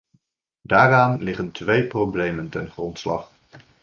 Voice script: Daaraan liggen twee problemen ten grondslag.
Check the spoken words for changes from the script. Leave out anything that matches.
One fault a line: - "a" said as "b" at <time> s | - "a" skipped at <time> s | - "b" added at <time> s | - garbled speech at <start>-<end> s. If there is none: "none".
none